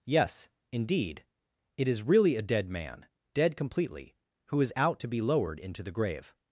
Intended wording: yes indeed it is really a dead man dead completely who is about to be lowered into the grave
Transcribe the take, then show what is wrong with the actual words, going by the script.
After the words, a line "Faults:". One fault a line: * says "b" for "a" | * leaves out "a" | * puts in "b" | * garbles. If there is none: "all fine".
yes indeed it is really a dead man dead completely who is out to be lowered into the grave
Faults:
* says "out" for "about"